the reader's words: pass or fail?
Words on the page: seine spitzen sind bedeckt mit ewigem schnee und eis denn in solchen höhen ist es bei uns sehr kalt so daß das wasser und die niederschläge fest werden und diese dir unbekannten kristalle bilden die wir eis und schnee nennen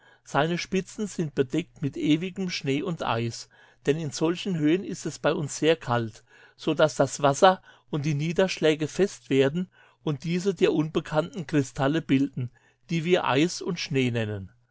pass